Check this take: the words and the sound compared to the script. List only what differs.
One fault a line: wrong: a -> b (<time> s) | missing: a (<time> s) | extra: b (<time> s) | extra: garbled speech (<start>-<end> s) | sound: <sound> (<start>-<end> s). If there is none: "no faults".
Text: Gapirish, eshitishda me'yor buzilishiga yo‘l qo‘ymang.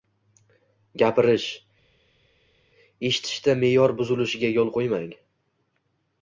no faults